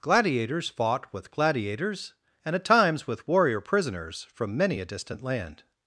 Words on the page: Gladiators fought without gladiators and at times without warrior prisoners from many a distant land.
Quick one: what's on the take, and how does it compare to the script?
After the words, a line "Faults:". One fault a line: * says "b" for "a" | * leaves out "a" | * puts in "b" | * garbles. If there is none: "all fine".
Gladiators fought with gladiators and at times with warrior prisoners from many a distant land.
Faults:
* says "with" for "without"
* says "with" for "without"